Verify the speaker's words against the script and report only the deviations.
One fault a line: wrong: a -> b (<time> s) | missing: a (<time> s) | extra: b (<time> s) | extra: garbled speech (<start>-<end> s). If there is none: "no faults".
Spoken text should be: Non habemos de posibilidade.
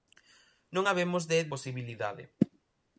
no faults